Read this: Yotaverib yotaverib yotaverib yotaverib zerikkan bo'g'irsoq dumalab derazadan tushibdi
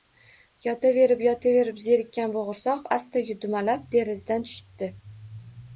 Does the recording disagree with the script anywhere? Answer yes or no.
yes